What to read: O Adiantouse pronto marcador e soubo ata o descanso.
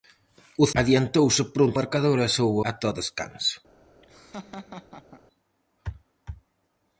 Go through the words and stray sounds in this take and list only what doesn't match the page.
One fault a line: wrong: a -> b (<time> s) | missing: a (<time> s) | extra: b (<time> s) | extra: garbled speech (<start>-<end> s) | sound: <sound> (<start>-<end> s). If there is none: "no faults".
sound: laugh (4.0-5.2 s)